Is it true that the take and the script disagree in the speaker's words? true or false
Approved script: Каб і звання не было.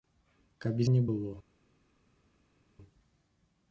true